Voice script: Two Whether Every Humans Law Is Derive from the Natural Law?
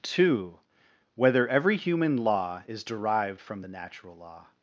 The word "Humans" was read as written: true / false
false